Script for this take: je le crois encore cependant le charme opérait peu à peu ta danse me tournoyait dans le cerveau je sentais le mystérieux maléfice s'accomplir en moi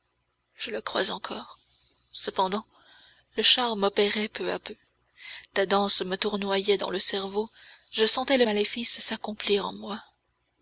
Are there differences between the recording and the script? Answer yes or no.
yes